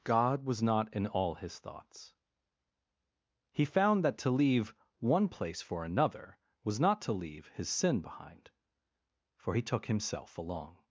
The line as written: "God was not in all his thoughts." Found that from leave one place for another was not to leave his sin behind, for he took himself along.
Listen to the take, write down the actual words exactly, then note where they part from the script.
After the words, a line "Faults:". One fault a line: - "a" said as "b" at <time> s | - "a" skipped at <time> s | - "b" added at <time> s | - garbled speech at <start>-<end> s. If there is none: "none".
"God was not in all his thoughts." He found that to leave one place for another was not to leave his sin behind, for he took himself along.
Faults:
- "He" added at 3.5 s
- "from" said as "to" at 4.2 s